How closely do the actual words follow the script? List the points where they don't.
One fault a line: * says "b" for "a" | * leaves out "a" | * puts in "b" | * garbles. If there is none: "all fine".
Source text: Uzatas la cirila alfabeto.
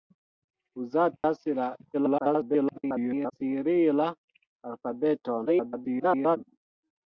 * garbles
* garbles